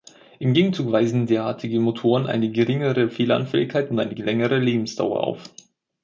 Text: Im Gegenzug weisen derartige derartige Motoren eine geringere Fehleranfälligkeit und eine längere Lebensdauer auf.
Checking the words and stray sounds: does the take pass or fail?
fail